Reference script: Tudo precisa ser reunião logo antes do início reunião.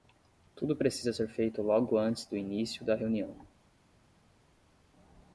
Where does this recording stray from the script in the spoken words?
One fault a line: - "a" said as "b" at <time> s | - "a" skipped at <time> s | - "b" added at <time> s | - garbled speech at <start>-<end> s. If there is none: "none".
- "reunião" said as "feito" at 1.3 s
- "da" added at 2.8 s